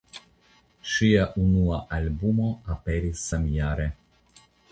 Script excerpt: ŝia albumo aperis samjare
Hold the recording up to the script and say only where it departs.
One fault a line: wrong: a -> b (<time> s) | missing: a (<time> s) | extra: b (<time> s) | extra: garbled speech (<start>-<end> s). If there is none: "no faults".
extra: unua (1.4 s)